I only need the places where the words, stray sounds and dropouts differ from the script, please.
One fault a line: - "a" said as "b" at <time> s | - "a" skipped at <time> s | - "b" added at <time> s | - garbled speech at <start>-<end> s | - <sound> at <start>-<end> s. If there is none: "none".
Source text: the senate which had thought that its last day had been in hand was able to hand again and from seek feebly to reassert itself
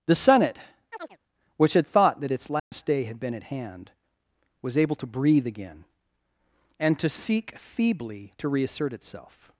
- chirp at 0.9-1.2 s
- dropout at 2.6-2.7 s
- "in" said as "at" at 3.3 s
- "hand" said as "breathe" at 5.1 s
- "from" said as "to" at 7.0 s